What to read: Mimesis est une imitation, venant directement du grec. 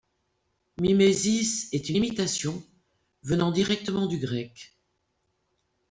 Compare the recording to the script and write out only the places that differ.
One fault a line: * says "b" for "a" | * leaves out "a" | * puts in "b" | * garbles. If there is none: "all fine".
all fine